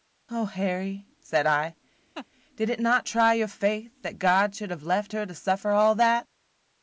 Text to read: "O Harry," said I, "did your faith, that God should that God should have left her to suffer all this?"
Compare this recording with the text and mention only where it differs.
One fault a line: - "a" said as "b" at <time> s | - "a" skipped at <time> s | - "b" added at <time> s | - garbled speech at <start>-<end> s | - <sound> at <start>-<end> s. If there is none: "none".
- laugh at 2.1-2.3 s
- "your faith that God should" said as "it not try your faith" at 2.7 s
- "this" said as "that" at 6.0 s